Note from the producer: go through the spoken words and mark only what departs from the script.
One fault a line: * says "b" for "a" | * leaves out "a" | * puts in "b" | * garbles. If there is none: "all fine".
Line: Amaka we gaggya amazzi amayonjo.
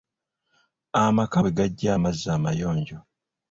all fine